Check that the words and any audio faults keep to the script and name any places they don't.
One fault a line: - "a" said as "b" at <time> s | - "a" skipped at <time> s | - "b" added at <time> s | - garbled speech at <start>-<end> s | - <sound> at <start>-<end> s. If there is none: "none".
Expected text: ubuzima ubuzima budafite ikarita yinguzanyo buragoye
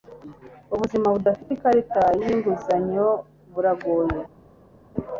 - "ubuzima" skipped at 1.1 s